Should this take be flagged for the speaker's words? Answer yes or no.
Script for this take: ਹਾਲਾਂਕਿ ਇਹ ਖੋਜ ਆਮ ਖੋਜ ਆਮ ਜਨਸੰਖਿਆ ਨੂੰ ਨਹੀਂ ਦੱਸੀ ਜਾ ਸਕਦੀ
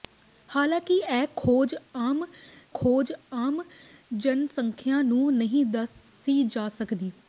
no